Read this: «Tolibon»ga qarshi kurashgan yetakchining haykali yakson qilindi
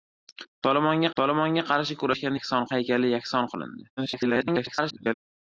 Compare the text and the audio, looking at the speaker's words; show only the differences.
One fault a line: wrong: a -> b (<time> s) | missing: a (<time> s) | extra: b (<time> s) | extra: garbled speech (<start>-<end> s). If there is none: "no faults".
extra: tolibon»ga (1.2 s)
wrong: yetakchining -> yakson (2.3 s)
extra: garbled speech (4.0-5.1 s)